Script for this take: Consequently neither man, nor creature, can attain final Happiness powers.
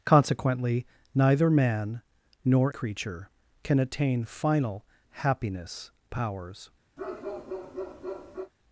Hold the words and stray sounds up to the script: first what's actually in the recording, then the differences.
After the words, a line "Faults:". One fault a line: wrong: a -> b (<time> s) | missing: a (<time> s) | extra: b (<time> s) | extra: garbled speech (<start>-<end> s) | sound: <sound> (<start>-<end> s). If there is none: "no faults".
Consequently neither man, nor creature, can attain final Happiness powers.
Faults:
sound: bark (7.0-8.5 s)